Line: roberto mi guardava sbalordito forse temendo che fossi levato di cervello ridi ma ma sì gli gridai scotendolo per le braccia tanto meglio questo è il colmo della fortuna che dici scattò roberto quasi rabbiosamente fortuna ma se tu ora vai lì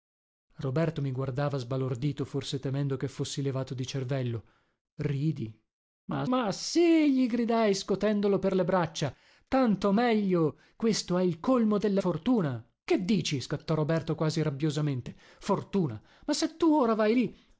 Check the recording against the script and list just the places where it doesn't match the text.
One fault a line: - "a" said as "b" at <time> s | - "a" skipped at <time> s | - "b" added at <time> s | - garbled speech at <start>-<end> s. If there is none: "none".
none